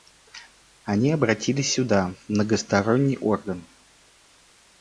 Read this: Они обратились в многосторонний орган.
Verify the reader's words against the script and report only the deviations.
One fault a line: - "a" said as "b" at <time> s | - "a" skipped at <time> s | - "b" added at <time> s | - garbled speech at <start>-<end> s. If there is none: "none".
- "сюда" added at 1.7 s